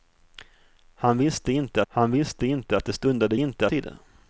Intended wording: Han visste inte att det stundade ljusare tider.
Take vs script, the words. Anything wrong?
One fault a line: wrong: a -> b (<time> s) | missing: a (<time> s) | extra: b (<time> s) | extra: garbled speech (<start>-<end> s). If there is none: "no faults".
extra: han visste inte (1.9 s)
wrong: ljusare -> inte (3.4 s)